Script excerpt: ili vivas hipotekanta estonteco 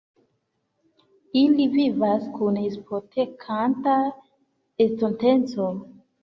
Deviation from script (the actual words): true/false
true